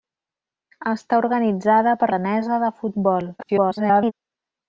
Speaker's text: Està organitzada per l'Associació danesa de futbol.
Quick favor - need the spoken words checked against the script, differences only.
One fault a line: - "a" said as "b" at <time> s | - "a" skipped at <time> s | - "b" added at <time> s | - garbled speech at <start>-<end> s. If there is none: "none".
- "l'Associació" skipped at 2.1 s
- garbled speech at 3.4-4.1 s